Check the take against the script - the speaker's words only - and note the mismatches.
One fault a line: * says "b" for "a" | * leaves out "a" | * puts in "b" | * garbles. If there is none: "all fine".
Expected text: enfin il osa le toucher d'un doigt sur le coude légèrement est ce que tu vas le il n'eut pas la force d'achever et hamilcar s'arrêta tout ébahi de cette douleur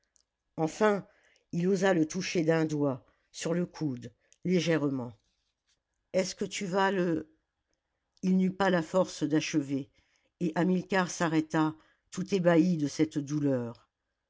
all fine